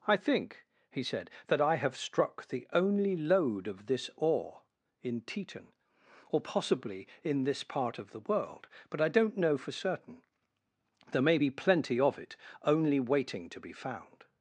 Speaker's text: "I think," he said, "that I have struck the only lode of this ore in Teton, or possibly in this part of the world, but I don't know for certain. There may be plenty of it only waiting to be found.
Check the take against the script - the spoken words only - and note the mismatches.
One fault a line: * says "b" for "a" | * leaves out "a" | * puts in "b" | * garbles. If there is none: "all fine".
all fine